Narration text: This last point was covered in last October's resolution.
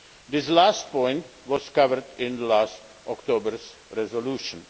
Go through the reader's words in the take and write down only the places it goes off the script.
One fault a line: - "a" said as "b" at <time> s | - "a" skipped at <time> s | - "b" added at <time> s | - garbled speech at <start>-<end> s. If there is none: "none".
none